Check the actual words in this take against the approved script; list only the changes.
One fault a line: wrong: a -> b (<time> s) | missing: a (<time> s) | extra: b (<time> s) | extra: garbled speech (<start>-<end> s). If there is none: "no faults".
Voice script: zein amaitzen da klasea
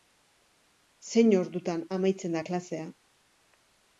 extra: ordutan (1.4 s)